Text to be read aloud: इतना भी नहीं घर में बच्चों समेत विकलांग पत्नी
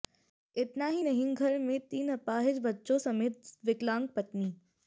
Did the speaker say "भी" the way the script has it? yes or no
no